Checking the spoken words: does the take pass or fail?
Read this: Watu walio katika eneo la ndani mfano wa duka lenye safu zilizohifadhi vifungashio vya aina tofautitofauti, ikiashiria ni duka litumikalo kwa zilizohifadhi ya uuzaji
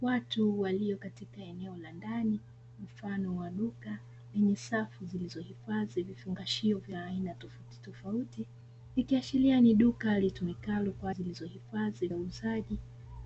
pass